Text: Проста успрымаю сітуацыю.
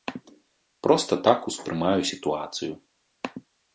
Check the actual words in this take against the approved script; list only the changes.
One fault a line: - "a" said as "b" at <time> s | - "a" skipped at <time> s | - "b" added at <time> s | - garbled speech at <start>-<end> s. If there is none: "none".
- "так" added at 1.3 s